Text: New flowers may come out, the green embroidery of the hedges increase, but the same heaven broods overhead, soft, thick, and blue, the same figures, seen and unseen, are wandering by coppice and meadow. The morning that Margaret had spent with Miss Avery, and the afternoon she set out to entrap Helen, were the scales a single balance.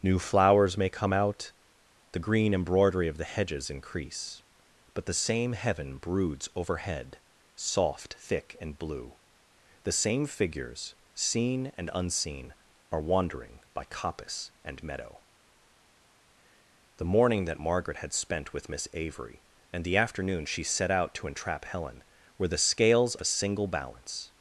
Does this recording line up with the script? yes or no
yes